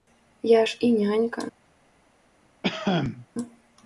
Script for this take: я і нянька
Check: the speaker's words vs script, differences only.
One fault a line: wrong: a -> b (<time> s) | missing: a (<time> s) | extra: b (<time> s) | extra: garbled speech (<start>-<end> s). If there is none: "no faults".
extra: ж (0.7 s)